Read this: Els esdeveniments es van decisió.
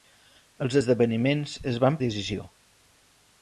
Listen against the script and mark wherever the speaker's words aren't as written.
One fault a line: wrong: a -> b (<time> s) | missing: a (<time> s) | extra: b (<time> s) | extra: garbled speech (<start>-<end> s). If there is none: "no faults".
no faults